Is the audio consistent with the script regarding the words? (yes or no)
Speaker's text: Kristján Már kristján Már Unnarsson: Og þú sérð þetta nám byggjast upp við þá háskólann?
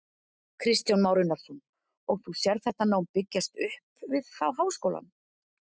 no